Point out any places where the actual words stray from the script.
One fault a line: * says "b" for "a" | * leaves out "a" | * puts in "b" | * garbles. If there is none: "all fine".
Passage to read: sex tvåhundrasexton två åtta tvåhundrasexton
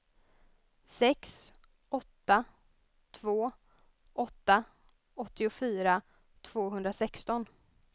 * says "åtta" for "tvåhundrasexton"
* puts in "åttiofyra"